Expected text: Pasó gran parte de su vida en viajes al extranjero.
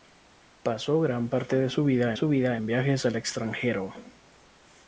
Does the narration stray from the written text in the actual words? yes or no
yes